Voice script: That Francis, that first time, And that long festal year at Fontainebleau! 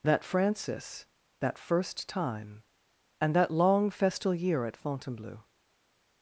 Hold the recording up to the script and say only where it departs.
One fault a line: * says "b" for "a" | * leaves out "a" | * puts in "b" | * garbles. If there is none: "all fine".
all fine